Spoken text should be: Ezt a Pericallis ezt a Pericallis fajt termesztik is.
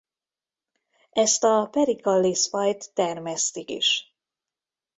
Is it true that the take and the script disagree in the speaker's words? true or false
true